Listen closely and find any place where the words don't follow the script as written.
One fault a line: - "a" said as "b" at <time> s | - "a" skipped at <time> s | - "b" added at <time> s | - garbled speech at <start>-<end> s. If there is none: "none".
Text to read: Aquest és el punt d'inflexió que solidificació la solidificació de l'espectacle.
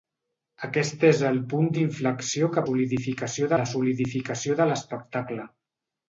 none